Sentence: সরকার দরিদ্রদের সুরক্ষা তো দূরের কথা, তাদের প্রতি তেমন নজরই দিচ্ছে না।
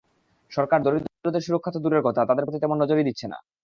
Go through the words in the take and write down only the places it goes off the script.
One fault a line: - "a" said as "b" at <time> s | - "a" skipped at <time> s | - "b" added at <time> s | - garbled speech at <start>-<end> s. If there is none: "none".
none